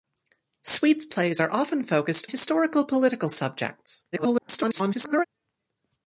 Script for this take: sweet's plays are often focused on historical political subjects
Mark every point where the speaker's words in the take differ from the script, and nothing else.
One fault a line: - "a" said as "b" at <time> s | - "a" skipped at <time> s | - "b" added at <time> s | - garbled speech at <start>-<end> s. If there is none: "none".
- "on" skipped at 2.3 s
- garbled speech at 4.1-5.2 s